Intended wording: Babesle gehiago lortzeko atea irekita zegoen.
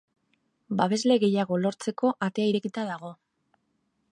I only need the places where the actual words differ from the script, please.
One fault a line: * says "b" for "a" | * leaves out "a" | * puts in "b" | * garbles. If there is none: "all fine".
* says "dago" for "zegoen"